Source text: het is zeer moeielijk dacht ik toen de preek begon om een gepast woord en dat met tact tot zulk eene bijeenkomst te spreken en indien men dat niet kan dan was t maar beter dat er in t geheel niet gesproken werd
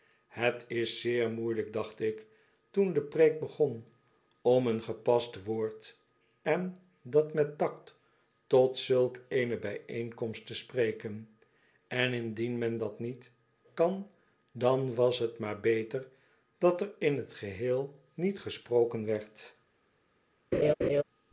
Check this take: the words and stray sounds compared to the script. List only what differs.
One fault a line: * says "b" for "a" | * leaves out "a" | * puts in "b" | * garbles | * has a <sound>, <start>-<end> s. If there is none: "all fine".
* has a laugh, 20.5-21.0 s